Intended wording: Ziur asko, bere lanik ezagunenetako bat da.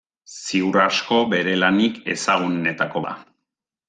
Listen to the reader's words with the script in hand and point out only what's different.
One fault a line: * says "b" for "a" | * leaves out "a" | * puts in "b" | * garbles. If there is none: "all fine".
* leaves out "bat"